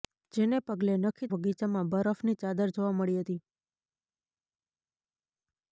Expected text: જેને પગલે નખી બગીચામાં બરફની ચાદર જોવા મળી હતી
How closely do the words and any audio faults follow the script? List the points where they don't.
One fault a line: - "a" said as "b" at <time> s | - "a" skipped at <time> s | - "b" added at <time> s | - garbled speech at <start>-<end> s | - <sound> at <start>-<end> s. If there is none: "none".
none